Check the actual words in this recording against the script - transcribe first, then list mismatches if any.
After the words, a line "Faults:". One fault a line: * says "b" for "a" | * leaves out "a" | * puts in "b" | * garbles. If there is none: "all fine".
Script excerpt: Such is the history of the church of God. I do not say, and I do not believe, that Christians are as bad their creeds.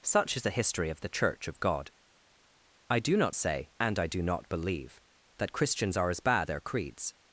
Such is the history of the church of God. I do not say, and I do not believe, that Christians are as bad their creeds.
Faults:
all fine